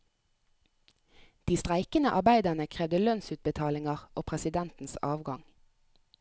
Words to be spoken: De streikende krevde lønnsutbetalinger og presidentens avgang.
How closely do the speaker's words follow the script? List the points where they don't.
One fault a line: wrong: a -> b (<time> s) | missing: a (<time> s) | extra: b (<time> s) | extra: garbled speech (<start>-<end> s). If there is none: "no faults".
extra: arbeiderne (2.1 s)